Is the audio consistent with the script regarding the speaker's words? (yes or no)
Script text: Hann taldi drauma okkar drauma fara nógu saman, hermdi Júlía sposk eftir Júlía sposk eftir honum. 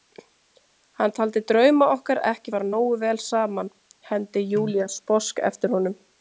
no